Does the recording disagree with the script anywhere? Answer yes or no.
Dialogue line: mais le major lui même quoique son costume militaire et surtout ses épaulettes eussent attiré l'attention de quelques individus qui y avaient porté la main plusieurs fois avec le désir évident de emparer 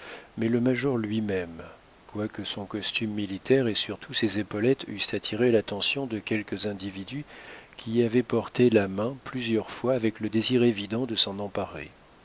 yes